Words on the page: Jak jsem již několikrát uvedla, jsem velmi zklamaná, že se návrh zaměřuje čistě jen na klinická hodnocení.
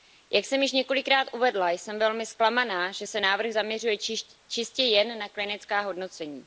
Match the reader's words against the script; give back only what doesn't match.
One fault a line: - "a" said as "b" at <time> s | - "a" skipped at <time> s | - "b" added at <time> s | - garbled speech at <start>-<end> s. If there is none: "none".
none